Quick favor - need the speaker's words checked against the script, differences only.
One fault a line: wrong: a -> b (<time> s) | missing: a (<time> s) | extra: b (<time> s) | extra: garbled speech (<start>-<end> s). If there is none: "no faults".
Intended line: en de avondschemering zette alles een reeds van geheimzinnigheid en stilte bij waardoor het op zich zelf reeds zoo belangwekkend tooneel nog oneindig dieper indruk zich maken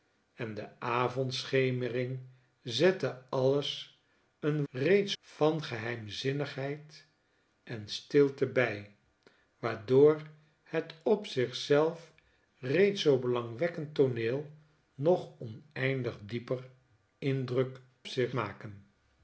no faults